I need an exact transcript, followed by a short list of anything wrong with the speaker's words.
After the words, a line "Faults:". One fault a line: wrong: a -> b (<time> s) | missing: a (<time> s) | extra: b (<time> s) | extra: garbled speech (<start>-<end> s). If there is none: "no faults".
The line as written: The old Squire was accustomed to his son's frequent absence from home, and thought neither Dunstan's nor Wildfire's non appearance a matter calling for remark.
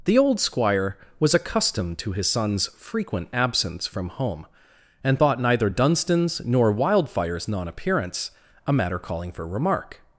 The old Squire was accustomed to his son's frequent absence from home, and thought neither Dunstan's nor Wildfire's non appearance a matter calling for remark.
Faults:
no faults